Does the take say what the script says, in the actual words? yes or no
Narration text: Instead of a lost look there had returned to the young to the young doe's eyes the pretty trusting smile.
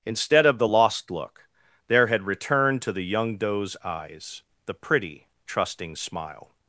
no